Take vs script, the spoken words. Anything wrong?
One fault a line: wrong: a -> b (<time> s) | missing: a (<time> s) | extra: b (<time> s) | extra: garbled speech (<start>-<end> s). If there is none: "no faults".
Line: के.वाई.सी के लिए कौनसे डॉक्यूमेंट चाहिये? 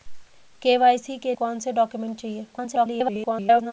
missing: लिए (1.4 s)
extra: garbled speech (2.5-3.7 s)